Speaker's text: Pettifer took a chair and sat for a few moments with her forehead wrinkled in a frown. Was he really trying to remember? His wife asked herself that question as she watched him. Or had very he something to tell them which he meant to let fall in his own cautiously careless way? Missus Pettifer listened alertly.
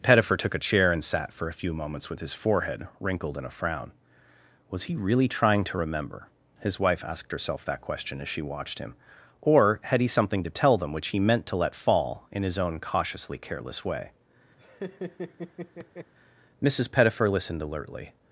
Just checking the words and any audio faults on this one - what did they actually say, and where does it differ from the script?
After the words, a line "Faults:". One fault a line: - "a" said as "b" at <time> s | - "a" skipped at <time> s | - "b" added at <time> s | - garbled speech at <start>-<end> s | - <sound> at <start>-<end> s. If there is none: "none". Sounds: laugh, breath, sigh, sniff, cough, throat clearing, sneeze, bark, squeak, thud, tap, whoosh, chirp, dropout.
Pettifer took a chair and sat for a few moments with his forehead wrinkled in a frown. Was he really trying to remember? His wife asked herself that question as she watched him. Or had he something to tell them which he meant to let fall in his own cautiously careless way? Missus Pettifer listened alertly.
Faults:
- "her" said as "his" at 2.2 s
- "very" skipped at 10.0 s
- laugh at 14.6-16.1 s